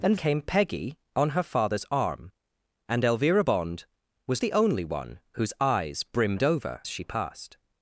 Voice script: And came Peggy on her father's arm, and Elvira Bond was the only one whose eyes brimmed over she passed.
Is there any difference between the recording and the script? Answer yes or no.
no